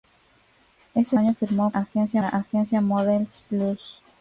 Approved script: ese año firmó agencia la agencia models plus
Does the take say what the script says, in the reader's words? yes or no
yes